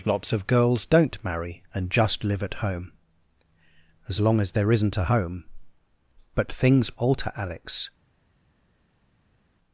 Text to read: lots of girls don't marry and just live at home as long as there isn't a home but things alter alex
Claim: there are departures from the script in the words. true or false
false